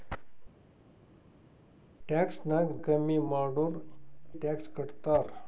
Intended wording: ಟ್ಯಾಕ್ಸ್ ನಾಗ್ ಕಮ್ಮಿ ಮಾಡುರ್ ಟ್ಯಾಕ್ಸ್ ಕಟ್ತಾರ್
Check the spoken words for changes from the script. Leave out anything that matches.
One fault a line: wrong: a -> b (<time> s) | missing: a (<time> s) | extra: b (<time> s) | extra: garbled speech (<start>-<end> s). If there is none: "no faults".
no faults